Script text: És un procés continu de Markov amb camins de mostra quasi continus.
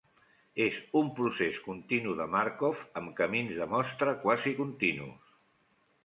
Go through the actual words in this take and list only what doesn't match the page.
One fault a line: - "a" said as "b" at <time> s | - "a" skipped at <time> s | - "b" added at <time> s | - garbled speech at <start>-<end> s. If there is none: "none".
none